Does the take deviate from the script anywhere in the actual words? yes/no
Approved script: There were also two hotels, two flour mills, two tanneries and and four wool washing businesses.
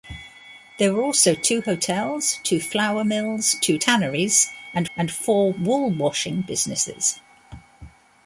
no